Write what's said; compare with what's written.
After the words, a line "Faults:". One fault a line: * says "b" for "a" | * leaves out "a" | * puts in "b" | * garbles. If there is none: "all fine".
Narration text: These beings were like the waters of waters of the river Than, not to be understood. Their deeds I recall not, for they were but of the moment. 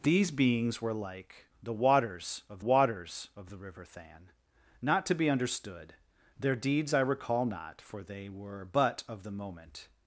These beings were like the waters of waters of the river Than, not to be understood. Their deeds I recall not, for they were but of the moment.
Faults:
all fine